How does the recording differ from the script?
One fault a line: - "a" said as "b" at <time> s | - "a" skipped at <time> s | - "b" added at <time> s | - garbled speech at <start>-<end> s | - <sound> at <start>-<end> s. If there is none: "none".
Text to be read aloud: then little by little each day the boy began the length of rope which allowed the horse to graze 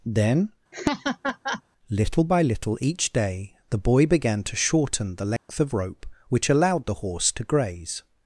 - laugh at 0.7-1.6 s
- "to shorten" added at 4.4 s
- dropout at 5.4-5.5 s